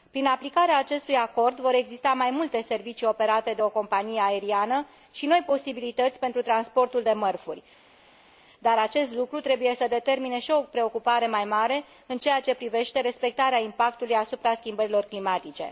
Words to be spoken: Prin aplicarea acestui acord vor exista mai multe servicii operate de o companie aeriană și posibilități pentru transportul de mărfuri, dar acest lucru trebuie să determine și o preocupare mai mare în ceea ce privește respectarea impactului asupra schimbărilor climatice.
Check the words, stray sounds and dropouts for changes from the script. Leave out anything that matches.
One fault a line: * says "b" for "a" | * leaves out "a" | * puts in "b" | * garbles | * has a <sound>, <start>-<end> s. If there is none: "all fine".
* puts in "noi"